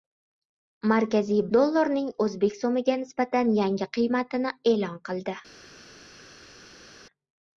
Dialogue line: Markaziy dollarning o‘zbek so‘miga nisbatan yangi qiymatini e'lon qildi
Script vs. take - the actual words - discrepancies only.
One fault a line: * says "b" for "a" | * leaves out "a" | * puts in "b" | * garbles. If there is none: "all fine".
all fine